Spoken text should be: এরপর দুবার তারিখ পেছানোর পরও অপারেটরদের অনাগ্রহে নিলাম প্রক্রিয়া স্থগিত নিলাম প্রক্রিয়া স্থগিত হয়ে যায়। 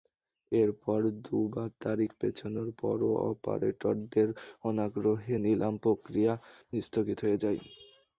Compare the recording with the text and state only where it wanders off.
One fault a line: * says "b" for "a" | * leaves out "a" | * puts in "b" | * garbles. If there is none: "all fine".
* leaves out "নিলাম প্রক্রিয়া স্থগিত"